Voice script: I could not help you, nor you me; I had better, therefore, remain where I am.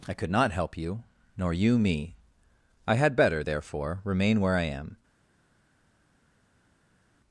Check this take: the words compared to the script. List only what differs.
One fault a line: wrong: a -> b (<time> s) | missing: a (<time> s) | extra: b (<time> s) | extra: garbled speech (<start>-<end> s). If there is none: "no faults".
no faults